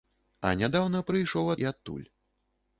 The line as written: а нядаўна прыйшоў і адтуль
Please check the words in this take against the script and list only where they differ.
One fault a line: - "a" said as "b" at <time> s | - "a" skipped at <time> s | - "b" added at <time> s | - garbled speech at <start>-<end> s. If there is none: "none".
none